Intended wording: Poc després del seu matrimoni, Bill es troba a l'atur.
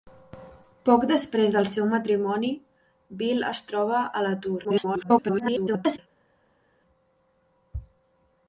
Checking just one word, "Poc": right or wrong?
right